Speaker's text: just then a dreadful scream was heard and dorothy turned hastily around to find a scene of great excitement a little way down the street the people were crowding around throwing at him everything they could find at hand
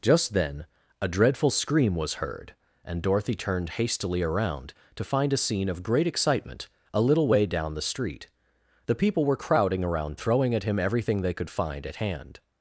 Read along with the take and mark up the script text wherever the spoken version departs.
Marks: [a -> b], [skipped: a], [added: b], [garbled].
just then a dreadful scream was heard and dorothy turned hastily around to find a scene of great excitement a little way down the street the people were crowding around throwing at him everything they could find at hand